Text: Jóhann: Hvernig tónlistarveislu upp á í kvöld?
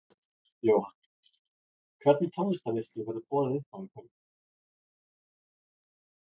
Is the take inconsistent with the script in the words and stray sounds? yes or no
yes